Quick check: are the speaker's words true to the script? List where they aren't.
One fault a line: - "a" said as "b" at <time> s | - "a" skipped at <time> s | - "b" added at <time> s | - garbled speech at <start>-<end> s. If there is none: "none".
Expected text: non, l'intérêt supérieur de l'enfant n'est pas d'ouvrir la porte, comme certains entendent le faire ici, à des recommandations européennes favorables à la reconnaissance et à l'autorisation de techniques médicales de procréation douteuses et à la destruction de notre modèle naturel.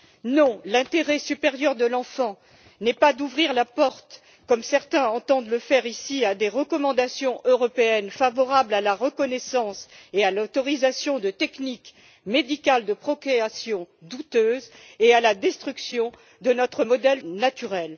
none